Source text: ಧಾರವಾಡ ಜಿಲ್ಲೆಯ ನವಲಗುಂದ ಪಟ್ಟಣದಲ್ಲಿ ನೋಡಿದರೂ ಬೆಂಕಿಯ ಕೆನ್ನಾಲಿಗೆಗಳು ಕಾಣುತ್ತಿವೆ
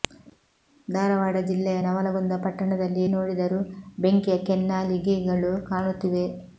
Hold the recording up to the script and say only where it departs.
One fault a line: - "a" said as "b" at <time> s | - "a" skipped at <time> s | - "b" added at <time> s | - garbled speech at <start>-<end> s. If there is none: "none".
none